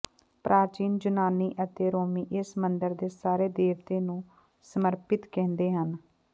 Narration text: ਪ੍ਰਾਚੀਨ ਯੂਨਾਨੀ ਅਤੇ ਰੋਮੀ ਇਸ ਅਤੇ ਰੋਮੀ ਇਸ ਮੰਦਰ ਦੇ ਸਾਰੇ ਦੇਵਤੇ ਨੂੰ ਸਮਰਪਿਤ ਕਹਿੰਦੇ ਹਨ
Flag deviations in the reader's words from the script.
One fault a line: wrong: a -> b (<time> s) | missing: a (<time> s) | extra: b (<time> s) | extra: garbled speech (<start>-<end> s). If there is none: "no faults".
missing: ਅਤੇ ਰੋਮੀ ਇਸ (2.6 s)